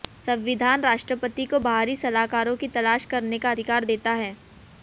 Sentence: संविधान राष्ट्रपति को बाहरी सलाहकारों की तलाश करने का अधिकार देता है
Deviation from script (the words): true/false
false